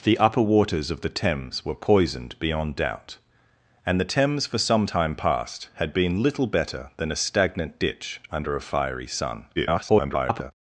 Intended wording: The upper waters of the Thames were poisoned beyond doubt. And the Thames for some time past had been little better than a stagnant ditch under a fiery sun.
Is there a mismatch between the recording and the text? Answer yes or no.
yes